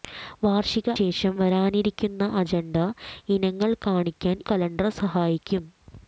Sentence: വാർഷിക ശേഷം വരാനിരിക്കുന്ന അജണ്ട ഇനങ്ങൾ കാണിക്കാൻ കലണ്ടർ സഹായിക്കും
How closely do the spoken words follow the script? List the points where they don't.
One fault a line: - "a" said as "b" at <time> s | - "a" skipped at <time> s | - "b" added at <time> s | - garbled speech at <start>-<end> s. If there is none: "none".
none